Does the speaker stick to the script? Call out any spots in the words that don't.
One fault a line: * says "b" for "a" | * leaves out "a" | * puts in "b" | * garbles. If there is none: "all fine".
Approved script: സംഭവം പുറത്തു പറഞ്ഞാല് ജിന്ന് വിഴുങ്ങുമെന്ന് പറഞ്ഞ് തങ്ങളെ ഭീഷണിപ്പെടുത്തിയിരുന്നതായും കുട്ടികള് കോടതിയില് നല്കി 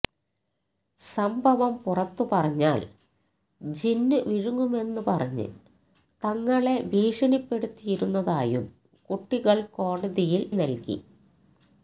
all fine